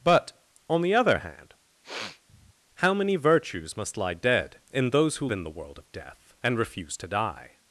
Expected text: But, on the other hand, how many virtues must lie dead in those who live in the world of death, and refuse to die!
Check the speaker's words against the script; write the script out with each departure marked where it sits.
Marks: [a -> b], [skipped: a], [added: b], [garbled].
But, on the other hand, how many virtues must lie dead in those who [skipped: live] in the world of death, and refuse to die!